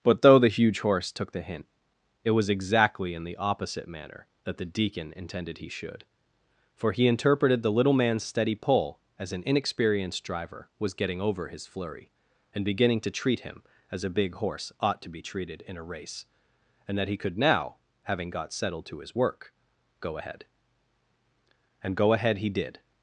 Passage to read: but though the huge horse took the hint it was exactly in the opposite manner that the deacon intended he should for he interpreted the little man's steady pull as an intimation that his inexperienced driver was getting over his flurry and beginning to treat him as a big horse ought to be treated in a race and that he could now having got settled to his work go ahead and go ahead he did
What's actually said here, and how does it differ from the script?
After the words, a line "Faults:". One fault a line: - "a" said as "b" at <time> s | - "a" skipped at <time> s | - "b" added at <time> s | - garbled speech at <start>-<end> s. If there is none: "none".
but though the huge horse took the hint it was exactly in the opposite manner that the deacon intended he should for he interpreted the little man's steady pull as an inexperienced driver was getting over his flurry and beginning to treat him as a big horse ought to be treated in a race and that he could now having got settled to his work go ahead and go ahead he did
Faults:
- "intimation that his" skipped at 9.4 s